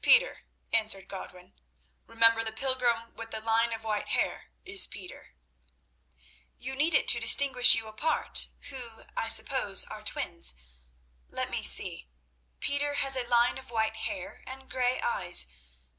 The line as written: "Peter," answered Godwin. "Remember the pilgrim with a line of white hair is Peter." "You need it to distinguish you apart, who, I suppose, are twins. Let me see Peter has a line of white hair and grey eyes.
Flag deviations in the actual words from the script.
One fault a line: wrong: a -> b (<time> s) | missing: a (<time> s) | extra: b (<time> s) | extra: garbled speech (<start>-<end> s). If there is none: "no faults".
wrong: a -> the (3.3 s)